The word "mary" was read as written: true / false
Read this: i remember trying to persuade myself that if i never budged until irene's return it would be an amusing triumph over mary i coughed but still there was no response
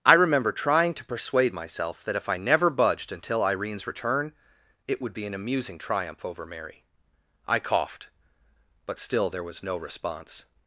true